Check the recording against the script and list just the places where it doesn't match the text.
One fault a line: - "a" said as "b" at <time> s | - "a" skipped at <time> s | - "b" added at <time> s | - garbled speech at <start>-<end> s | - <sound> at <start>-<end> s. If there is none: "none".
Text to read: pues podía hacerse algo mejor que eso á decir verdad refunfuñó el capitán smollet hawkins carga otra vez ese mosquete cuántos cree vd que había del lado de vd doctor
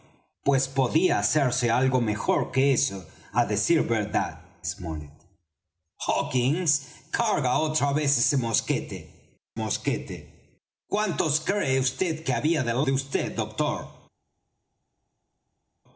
- "refunfuñó el capitán" skipped at 4.4 s
- "mosquete" added at 9.5 s
- "lado" skipped at 12.8 s